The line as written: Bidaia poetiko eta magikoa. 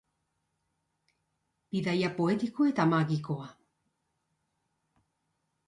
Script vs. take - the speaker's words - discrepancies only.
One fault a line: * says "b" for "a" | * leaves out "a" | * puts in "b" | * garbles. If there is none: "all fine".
all fine